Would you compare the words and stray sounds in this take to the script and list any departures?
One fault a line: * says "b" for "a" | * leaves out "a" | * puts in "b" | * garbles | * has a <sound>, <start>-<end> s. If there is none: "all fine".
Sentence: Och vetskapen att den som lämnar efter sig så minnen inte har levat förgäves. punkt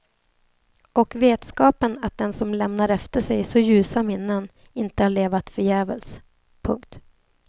* puts in "ljusa"